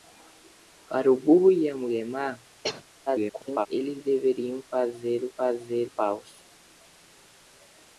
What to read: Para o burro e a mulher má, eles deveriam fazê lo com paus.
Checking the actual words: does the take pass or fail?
fail